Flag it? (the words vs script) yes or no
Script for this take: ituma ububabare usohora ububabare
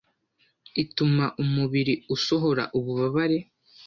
yes